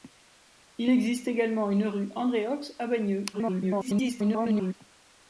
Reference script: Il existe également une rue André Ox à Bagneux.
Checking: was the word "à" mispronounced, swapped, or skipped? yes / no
no